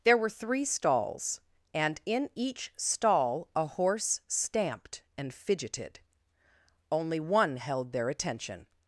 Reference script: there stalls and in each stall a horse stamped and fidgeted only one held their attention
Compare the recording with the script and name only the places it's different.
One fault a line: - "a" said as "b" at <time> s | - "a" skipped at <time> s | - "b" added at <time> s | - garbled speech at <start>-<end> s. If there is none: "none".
- "were three" added at 0.2 s